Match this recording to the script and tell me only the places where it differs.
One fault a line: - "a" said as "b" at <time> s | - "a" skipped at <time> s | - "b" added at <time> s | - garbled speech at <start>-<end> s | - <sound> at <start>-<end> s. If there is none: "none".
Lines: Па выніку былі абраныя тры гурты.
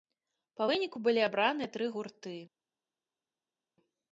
none